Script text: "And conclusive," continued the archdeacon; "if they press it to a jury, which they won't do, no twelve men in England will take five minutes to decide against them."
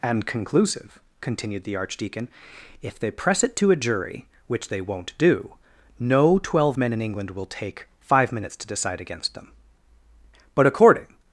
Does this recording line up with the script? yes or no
no